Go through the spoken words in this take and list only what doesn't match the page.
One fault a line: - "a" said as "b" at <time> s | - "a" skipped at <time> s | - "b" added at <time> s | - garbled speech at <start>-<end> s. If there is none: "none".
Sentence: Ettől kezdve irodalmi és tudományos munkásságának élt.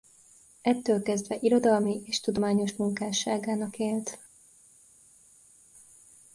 none